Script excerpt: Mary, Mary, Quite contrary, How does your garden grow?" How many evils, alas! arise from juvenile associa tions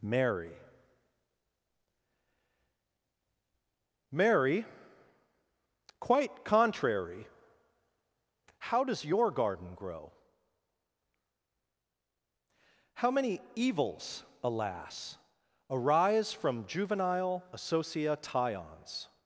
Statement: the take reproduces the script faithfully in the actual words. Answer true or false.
true